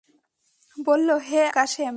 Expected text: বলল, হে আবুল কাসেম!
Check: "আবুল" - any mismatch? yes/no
yes